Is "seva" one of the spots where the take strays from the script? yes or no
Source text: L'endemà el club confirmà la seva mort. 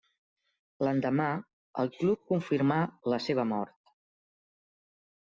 no